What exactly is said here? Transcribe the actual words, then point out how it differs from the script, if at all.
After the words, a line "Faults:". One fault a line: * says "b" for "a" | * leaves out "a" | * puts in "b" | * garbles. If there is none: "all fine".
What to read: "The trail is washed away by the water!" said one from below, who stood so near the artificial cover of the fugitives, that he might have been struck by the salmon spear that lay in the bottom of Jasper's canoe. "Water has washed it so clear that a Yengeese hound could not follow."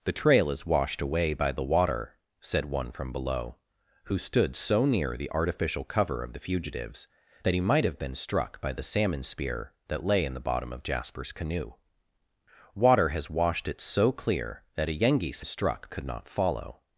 "The trail is washed away by the water!" said one from below, who stood so near the artificial cover of the fugitives, that he might have been struck by the salmon spear that lay in the bottom of Jasper's canoe. "Water has washed it so clear that a Yengeese struck could not follow."
Faults:
* says "struck" for "hound"